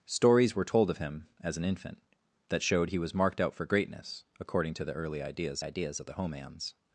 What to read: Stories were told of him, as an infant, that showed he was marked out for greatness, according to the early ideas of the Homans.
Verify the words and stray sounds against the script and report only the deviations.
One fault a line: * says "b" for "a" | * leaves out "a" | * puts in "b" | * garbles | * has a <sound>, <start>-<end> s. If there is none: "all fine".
* puts in "ideas"